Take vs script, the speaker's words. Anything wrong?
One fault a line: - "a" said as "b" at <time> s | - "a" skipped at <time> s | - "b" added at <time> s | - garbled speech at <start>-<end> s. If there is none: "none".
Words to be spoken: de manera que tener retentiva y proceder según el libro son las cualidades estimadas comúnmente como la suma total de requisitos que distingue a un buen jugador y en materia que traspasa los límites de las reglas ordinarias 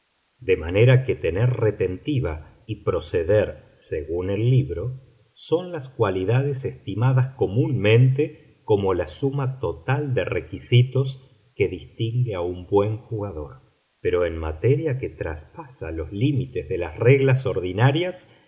- "y" said as "pero" at 14.0 s